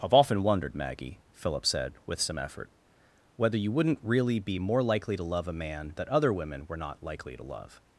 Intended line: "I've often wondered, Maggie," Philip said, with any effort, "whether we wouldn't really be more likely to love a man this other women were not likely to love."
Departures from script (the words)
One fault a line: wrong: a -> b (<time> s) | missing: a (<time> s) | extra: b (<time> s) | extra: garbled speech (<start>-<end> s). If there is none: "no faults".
wrong: any -> some (2.2 s)
wrong: we -> you (3.6 s)
wrong: this -> that (5.9 s)